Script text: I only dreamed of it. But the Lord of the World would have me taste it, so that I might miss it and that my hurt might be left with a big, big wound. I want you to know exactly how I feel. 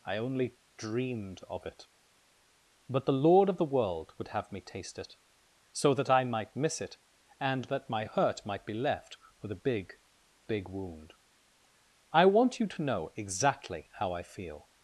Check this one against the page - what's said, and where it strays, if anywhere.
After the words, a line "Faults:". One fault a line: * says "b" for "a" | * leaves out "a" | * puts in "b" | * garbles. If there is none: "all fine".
I only dreamed of it. But the Lord of the World would have me taste it, so that I might miss it and that my hurt might be left with a big, big wound. I want you to know exactly how I feel.
Faults:
all fine